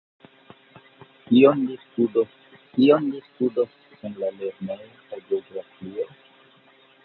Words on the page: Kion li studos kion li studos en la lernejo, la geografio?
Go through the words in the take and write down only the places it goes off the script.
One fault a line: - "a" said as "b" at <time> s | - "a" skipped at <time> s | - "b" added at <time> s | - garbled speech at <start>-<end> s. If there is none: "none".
none